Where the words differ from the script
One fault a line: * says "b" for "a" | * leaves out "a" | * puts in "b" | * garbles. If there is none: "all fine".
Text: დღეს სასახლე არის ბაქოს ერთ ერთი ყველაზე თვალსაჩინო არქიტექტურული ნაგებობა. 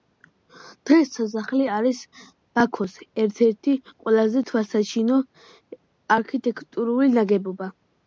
all fine